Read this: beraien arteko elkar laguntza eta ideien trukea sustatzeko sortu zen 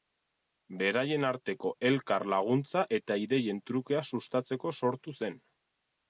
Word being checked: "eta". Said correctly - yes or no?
yes